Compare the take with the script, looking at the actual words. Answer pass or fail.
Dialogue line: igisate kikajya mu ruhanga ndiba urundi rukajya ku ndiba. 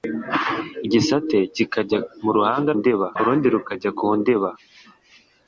pass